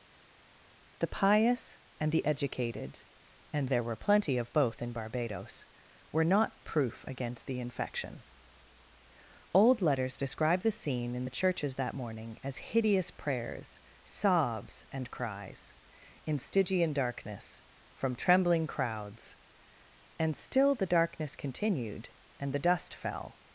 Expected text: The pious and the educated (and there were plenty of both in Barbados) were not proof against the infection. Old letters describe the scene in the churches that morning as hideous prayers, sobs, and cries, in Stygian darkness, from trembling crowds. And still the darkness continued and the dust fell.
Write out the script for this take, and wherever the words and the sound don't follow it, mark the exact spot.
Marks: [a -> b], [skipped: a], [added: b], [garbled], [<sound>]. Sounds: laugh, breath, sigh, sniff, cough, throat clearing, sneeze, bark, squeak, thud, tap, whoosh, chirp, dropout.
The pious and the educated (and there were plenty of both in Barbados) were not proof against the infection. Old letters describe the scene in the churches that morning as hideous prayers, sobs, and cries, in Stygian darkness, from trembling crowds. And still the darkness continued and the dust fell.